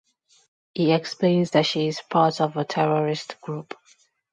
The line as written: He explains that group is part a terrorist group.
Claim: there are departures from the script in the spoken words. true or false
true